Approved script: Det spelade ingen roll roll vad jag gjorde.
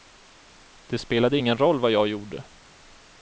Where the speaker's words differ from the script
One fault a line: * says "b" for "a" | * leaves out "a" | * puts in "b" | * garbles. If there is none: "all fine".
* leaves out "roll"